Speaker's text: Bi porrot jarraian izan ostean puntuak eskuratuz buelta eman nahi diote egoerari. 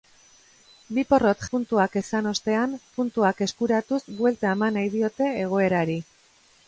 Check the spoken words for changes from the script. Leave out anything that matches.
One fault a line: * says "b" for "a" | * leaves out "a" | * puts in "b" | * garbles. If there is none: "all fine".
* says "puntuak" for "jarraian"